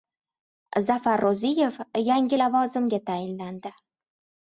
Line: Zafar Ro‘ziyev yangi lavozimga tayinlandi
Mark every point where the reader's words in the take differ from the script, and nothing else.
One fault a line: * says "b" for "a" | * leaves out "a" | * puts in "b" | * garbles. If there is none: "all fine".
all fine